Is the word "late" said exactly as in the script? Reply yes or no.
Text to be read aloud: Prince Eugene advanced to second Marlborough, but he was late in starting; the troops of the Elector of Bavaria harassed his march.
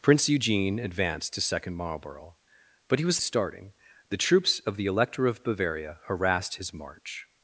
no